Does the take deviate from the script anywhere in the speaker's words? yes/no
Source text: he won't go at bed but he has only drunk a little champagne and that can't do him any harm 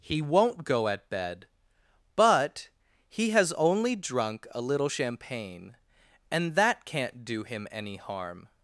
no